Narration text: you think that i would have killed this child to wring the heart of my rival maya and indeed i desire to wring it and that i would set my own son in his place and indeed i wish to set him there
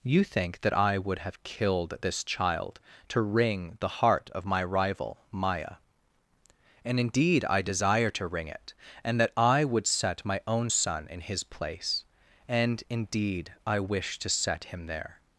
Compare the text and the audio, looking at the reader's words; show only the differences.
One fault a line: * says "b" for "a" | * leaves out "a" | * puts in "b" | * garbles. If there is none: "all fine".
all fine